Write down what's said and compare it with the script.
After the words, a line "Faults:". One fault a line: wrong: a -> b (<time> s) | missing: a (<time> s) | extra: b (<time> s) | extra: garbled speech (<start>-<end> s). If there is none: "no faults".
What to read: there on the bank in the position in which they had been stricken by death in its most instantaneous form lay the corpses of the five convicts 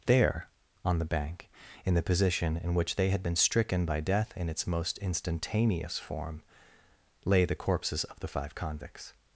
there on the bank in the position in which they had been stricken by death in its most instantaneous form lay the corpses of the five convicts
Faults:
no faults